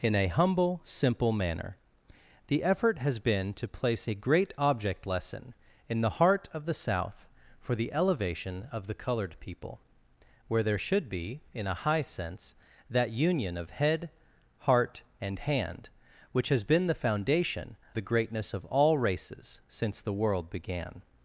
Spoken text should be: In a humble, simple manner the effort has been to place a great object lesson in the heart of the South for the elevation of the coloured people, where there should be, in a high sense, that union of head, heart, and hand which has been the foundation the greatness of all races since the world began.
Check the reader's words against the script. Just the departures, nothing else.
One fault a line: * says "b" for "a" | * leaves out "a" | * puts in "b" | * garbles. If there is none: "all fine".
all fine